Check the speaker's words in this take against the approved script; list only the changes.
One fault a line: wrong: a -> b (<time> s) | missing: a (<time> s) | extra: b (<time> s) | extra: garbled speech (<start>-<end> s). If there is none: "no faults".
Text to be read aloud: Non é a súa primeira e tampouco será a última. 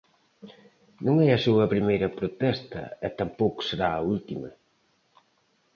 extra: protesta (2.2 s)